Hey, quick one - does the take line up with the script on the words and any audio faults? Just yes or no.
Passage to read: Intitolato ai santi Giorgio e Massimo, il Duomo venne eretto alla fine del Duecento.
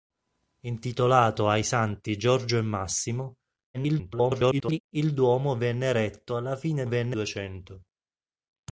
no